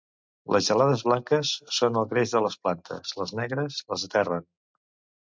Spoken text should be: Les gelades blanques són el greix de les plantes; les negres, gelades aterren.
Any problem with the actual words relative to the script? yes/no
yes